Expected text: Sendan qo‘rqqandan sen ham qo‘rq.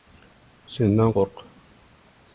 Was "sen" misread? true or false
true